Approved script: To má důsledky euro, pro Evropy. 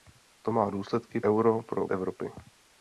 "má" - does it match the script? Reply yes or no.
yes